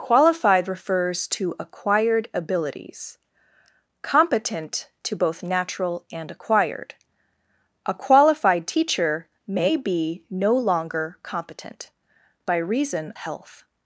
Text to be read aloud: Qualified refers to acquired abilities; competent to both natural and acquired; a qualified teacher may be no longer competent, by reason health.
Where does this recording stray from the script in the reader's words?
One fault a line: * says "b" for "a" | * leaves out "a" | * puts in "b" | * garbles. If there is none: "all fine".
all fine